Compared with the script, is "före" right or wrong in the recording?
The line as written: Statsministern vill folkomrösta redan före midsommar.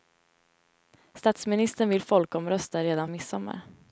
wrong